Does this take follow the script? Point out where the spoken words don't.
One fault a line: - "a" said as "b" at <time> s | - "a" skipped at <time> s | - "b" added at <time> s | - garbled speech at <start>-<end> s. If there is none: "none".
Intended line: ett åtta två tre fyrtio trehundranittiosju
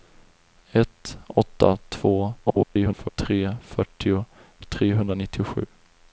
- garbled speech at 2.5-3.1 s